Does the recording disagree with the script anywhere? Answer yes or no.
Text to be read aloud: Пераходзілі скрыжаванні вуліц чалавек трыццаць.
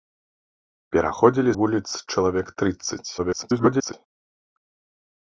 yes